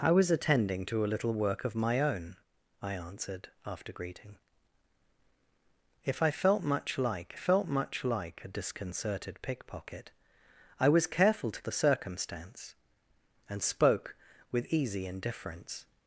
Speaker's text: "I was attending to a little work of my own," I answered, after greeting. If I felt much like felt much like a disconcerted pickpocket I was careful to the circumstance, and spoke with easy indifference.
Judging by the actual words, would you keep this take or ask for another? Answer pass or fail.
pass